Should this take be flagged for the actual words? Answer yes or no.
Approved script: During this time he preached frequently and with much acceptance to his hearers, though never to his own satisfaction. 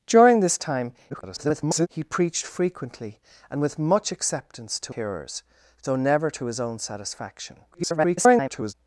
yes